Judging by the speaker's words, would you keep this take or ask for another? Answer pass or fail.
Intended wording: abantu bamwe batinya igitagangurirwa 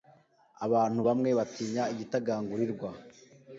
pass